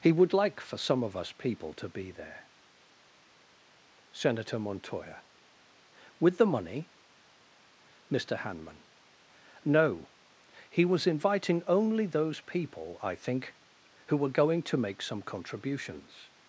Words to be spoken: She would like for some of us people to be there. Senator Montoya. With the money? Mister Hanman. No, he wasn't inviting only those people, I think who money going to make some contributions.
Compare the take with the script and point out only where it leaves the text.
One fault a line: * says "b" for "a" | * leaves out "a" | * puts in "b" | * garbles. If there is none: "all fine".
* says "He" for "She"
* says "was" for "wasn't"
* says "were" for "money"